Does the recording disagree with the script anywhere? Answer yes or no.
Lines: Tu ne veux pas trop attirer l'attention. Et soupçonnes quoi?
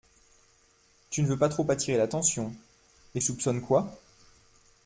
no